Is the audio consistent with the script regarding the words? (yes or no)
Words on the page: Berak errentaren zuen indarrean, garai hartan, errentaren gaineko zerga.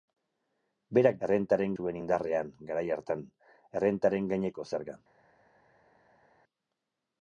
yes